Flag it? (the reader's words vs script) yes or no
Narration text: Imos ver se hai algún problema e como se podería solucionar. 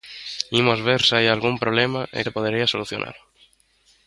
yes